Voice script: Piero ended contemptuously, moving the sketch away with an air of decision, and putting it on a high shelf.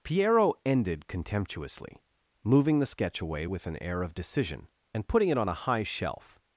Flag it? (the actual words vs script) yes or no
no